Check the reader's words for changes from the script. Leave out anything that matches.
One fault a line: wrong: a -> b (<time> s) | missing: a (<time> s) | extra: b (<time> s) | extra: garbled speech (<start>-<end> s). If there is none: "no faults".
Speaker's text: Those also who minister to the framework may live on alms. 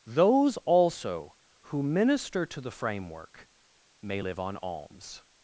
no faults